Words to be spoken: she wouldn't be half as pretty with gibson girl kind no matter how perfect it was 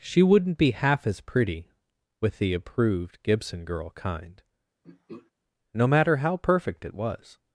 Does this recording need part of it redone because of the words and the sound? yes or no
yes